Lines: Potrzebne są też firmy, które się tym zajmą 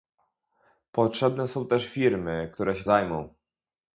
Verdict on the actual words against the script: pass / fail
fail